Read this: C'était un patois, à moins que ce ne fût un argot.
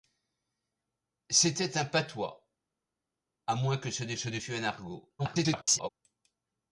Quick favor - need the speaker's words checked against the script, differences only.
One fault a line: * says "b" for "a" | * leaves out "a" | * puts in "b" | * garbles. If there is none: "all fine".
* puts in "ce ne"
* garbles